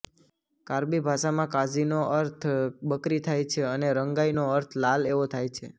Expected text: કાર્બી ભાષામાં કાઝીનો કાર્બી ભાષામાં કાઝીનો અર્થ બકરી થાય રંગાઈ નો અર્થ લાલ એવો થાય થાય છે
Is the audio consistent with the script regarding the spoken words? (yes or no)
no